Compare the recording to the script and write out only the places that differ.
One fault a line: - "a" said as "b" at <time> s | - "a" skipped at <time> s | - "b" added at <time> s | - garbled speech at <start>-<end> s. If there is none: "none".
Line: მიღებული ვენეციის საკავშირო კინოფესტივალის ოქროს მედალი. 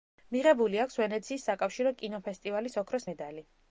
- "აქვს" added at 0.8 s